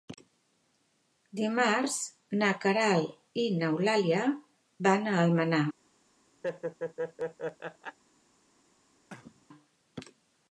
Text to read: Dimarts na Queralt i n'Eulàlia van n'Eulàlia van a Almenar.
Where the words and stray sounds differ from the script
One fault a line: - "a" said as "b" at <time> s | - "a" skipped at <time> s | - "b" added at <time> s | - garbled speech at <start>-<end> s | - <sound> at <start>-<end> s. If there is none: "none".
- "n'Eulàlia van" skipped at 5.1 s
- laugh at 6.4-8.0 s
- cough at 9.1-9.5 s